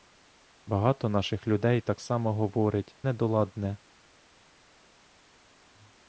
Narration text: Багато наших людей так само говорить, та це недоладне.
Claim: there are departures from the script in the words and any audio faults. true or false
true